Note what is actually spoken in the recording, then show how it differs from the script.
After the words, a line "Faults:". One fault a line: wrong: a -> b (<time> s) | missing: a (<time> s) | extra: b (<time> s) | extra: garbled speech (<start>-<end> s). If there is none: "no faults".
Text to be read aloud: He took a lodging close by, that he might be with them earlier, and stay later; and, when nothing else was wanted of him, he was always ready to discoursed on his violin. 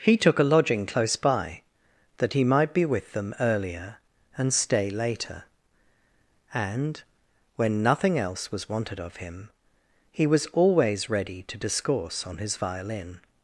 He took a lodging close by, that he might be with them earlier, and stay later; and, when nothing else was wanted of him, he was always ready to discourse on his violin.
Faults:
wrong: discoursed -> discourse (11.6 s)